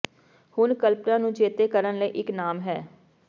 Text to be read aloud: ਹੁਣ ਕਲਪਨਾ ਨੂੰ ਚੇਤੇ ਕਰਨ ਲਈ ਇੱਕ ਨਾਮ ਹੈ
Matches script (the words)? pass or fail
pass